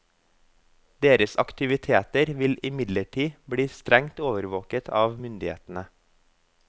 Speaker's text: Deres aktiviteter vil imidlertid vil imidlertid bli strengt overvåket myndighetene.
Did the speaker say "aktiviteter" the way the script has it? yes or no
yes